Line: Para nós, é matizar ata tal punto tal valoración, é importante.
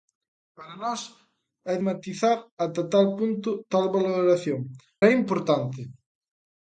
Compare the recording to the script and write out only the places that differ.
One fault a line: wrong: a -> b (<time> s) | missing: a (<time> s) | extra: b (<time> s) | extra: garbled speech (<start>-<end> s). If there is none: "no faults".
no faults